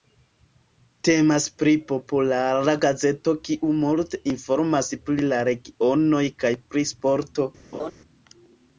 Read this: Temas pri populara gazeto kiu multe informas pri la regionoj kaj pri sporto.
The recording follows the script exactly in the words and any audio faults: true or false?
false